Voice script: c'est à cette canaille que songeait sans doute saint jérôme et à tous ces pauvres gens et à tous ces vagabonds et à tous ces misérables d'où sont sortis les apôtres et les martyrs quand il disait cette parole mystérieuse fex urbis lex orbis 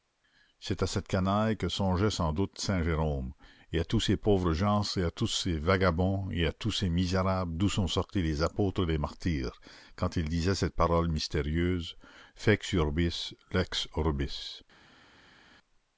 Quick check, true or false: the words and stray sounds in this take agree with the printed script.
true